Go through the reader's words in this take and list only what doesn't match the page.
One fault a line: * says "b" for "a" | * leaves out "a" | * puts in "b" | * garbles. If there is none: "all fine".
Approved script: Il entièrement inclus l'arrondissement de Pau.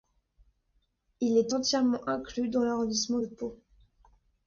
* puts in "est"
* puts in "dans"